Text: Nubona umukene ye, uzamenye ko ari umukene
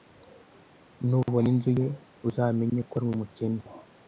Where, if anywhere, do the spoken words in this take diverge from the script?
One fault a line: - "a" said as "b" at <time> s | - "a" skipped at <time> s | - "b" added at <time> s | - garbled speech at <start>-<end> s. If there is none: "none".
- "umukene" said as "inzu" at 1.5 s